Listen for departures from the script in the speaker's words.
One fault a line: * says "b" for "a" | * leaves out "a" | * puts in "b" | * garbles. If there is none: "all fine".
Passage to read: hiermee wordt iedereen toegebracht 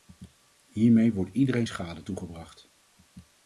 * puts in "schade"